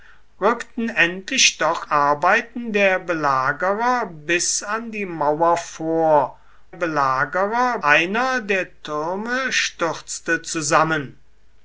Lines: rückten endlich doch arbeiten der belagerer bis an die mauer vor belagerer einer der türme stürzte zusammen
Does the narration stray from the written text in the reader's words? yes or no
no